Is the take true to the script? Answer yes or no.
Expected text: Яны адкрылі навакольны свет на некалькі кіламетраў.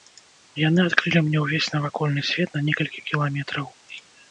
no